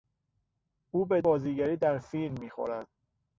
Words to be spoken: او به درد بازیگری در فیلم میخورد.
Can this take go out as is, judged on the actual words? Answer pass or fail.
fail